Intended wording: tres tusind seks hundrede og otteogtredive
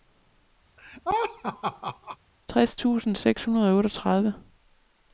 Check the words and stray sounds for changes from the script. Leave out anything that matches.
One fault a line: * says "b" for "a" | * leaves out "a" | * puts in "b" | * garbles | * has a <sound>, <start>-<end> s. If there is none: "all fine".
* has a laugh, 0.8-2.2 s